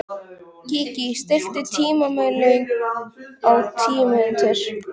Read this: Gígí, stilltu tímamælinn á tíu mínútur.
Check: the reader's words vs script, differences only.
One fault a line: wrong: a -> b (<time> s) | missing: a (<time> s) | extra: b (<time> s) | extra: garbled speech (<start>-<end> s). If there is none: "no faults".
no faults